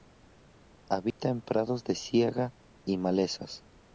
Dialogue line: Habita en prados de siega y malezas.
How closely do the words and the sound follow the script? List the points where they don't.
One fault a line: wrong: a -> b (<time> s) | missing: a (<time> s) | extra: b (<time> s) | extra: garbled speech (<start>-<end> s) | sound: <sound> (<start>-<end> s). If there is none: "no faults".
sound: dropout (1.1-1.2 s)